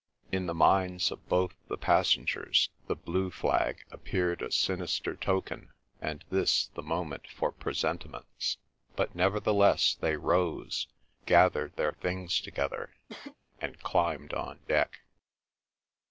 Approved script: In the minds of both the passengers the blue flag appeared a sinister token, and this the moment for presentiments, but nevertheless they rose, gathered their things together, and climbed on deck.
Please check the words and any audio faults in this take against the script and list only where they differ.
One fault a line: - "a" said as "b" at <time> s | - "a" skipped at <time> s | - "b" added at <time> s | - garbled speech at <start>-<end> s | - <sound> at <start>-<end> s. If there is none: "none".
- cough at 13.1-13.4 s